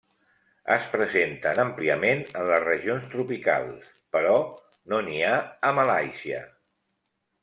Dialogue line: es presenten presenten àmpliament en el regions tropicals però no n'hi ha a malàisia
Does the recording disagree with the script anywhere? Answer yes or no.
yes